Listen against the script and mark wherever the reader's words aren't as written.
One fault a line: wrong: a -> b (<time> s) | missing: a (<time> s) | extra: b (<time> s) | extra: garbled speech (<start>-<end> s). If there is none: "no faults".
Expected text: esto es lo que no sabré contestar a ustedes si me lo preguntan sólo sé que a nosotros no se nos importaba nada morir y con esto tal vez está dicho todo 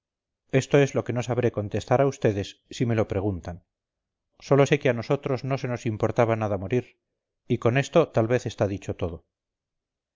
no faults